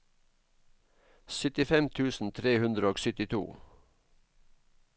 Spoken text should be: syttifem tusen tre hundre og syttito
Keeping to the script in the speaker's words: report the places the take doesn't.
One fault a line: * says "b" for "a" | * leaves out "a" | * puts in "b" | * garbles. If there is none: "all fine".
all fine